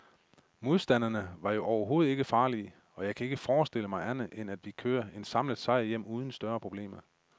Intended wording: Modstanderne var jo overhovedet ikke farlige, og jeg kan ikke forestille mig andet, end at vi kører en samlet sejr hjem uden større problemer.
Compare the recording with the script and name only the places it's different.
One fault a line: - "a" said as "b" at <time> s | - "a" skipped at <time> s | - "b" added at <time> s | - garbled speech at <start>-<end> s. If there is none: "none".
none